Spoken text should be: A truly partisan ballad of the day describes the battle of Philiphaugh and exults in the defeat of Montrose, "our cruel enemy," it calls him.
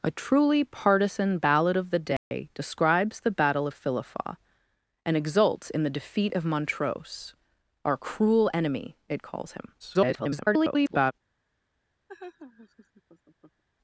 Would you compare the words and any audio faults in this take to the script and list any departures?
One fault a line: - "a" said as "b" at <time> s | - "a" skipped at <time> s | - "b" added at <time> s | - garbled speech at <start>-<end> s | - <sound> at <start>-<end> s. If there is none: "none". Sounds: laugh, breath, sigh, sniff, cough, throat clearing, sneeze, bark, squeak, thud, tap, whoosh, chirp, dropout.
- dropout at 2.2-2.3 s
- garbled speech at 9.8-11.1 s
- laugh at 12.1-13.6 s